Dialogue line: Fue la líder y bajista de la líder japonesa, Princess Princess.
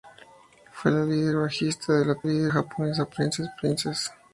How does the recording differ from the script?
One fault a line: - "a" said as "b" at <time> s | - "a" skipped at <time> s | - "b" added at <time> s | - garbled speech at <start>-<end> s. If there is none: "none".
none